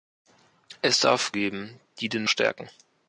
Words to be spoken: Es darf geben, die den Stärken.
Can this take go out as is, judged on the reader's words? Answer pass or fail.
pass